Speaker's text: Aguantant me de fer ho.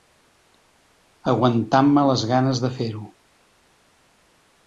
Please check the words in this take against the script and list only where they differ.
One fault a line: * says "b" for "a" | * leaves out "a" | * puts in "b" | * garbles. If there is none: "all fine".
* puts in "les ganes"